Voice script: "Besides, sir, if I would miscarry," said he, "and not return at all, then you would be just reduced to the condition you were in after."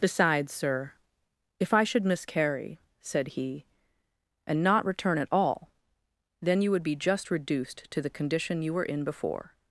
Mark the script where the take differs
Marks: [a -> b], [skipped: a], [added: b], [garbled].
"Besides, sir, if I [would -> should] miscarry," said he, "and not return at all, then you would be just reduced to the condition you were in [after." -> before]